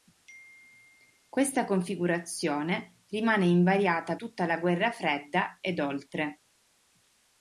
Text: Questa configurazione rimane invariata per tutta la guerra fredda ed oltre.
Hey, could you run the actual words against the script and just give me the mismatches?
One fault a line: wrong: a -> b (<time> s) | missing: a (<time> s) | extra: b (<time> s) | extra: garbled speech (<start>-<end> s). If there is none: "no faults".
missing: per (4.2 s)